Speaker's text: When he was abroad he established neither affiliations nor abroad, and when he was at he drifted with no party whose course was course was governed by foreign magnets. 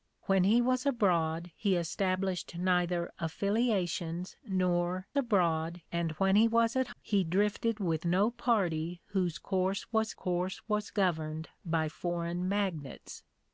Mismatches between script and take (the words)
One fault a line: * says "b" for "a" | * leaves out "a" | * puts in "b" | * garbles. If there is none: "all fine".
all fine